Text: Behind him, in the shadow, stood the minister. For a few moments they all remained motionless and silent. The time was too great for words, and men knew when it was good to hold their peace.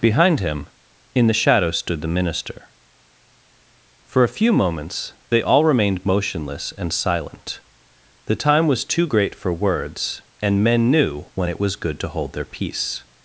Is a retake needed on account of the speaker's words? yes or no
no